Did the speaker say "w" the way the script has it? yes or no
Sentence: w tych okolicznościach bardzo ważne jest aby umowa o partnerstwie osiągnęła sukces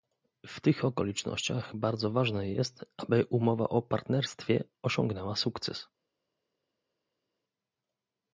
yes